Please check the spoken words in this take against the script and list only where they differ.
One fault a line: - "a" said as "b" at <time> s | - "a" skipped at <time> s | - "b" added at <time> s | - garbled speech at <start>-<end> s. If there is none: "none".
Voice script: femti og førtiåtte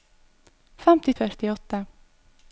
none